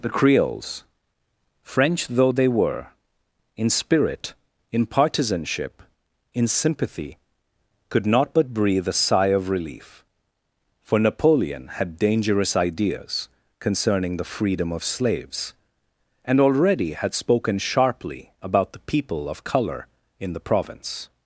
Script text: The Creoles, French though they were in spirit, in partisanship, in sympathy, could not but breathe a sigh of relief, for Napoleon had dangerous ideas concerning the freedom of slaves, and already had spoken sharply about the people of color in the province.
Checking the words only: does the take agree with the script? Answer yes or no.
yes